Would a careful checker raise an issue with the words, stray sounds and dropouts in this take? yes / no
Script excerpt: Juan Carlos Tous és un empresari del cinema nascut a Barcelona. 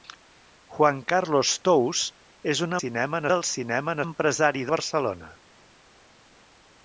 yes